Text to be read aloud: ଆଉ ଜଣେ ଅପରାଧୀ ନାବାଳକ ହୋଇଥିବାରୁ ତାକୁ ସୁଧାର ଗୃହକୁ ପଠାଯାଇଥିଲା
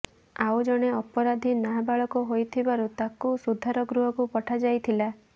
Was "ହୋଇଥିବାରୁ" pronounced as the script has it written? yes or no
yes